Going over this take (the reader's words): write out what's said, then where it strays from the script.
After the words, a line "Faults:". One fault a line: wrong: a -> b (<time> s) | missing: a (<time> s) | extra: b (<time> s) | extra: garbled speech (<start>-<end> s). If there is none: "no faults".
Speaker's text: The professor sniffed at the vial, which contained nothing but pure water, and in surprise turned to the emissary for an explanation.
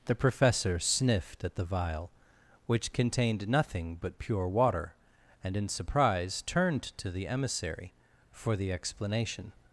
The professor sniffed at the vial, which contained nothing but pure water, and in surprise turned to the emissary for the explanation.
Faults:
wrong: an -> the (8.5 s)